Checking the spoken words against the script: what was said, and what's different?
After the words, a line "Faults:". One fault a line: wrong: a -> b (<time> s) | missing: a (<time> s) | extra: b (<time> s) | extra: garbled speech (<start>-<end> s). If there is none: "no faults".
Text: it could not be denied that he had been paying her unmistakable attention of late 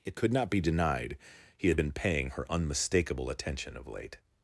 it could not be denied he had been paying her unmistakable attention of late
Faults:
missing: that (1.2 s)